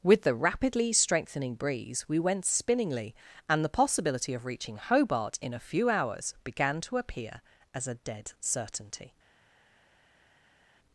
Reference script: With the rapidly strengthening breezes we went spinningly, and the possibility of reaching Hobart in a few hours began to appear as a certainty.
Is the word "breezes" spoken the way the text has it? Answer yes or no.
no